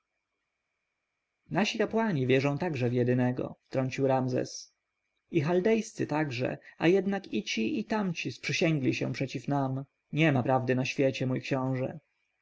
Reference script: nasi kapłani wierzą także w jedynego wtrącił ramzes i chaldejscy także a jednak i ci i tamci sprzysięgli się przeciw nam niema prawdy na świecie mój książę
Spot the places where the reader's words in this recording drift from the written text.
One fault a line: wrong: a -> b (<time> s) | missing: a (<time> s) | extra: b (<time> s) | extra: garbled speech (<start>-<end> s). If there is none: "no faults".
no faults